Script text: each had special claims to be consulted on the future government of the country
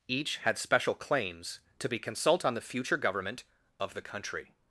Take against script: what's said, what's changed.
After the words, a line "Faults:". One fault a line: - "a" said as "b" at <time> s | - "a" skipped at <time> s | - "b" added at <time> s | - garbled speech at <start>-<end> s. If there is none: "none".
each had special claims to be consult on the future government of the country
Faults:
- "consulted" said as "consult" at 2.0 s